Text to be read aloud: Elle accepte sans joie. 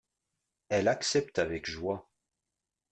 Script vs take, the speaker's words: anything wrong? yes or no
yes